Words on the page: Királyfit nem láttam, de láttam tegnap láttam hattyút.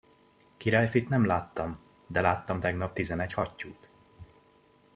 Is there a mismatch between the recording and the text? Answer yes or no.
yes